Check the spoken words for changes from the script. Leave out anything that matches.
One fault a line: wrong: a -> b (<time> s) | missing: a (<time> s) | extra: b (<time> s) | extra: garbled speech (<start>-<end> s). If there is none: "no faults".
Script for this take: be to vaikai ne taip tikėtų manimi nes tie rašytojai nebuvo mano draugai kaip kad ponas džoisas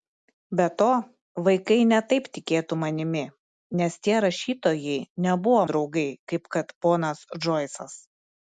missing: mano (5.6 s)